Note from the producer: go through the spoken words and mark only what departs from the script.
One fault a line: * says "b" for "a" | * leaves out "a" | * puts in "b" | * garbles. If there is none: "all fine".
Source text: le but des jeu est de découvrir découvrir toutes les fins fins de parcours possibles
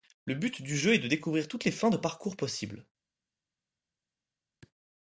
* says "du" for "des"
* leaves out "découvrir"
* leaves out "fins"